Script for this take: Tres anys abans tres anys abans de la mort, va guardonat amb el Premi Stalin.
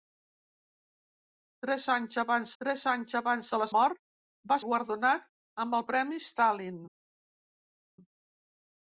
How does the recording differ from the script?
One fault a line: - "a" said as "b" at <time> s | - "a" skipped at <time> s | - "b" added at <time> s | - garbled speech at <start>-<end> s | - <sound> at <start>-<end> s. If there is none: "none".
none